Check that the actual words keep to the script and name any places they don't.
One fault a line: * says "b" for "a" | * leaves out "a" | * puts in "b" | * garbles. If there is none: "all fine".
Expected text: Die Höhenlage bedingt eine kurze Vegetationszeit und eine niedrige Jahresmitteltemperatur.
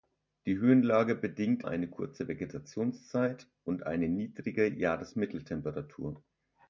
all fine